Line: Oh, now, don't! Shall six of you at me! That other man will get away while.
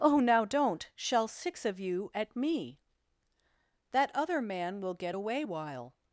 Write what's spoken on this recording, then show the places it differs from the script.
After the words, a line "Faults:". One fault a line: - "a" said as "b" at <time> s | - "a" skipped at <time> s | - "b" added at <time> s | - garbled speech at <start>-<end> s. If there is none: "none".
Oh, now, don't! Shall six of you at me! That other man will get away while.
Faults:
none